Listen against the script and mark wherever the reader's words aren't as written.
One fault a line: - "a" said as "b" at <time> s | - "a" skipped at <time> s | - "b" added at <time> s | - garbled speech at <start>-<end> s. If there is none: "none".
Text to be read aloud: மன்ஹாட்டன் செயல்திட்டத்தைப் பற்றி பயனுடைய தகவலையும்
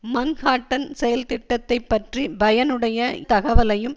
none